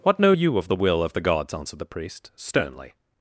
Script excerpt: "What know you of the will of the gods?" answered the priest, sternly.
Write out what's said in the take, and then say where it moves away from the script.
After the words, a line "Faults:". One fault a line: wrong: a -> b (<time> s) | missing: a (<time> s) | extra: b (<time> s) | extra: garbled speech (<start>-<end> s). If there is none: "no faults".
"What know you of the will of the gods?" answered the priest, sternly.
Faults:
no faults